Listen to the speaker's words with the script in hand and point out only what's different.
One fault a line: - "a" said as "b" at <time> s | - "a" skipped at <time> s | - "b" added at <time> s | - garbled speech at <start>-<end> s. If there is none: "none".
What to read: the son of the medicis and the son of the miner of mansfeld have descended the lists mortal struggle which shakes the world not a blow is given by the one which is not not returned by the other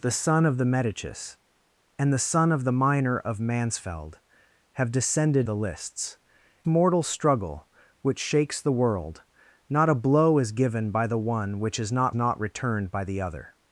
none